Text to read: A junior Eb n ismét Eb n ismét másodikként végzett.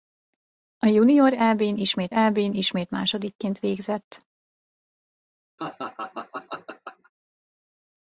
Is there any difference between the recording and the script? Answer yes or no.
no